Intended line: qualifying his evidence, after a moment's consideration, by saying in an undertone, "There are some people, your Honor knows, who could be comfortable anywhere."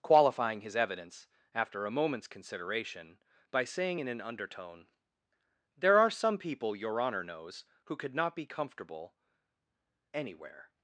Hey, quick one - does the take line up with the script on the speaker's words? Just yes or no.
no